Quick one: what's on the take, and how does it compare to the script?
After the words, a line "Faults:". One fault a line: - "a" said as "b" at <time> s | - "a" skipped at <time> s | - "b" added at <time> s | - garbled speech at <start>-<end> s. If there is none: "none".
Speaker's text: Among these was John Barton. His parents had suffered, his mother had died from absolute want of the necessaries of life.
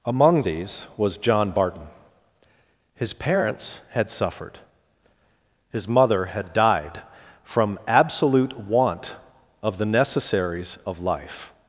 Among these was John Barton. His parents had suffered, his mother had died from absolute want of the necessaries of life.
Faults:
none